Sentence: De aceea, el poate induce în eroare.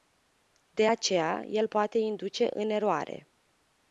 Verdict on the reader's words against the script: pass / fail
pass